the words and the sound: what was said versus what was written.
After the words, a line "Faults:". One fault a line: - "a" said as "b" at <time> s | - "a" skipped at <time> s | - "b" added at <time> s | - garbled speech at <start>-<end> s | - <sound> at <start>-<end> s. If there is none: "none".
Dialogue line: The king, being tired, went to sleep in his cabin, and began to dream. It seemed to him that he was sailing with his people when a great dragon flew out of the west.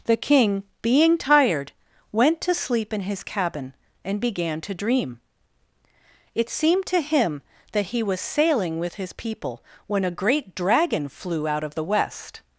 The king, being tired, went to sleep in his cabin, and began to dream. It seemed to him that he was sailing with his people when a great dragon flew out of the west.
Faults:
none